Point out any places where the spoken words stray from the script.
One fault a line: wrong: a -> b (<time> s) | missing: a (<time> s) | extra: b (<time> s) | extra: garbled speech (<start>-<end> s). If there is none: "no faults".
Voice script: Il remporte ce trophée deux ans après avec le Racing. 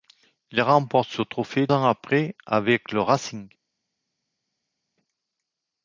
missing: deux (1.7 s)